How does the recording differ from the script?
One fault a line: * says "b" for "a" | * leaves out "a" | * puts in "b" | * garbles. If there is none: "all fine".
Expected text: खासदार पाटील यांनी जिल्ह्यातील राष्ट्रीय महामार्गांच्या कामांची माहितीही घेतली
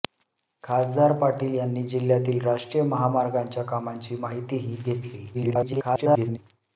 * garbles